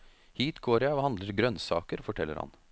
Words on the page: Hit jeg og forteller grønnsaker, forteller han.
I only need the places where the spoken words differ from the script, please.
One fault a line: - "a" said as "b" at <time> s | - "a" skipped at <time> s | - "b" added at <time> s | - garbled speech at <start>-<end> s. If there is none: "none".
- "går" added at 0.6 s
- "forteller" said as "handler" at 1.1 s